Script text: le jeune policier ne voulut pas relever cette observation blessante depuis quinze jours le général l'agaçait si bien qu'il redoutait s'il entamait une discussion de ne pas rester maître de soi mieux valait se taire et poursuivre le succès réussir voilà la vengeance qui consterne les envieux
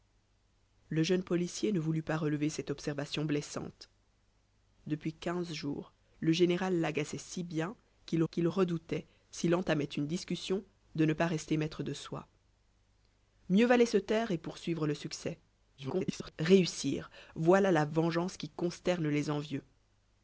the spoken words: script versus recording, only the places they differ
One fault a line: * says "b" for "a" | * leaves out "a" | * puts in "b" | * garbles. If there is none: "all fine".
* puts in "qu'il"
* garbles